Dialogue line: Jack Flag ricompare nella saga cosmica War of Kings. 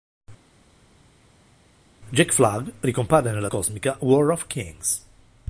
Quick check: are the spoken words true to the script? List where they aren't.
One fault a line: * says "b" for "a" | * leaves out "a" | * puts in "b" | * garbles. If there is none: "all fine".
* leaves out "saga"